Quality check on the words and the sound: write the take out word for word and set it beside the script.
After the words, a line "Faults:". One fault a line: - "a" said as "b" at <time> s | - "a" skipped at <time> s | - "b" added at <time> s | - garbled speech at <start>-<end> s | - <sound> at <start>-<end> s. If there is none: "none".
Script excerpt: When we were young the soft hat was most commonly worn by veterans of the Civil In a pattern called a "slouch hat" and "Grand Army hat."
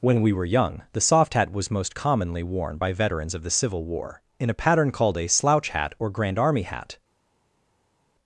When we were young the soft hat was most commonly worn by veterans of the Civil War, in a pattern called a "slouch hat" or "Grand Army hat."
Faults:
- "War" added at 3.8 s
- "and" said as "or" at 6.0 s